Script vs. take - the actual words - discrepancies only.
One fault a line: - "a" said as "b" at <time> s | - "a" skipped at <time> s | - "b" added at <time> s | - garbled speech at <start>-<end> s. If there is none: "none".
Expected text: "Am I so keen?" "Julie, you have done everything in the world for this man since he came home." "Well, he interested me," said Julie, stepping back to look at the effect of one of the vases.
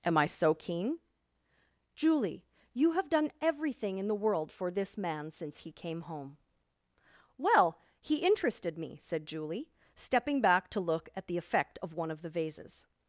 none